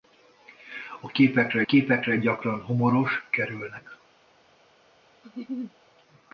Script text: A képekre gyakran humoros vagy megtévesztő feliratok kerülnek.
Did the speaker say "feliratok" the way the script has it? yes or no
no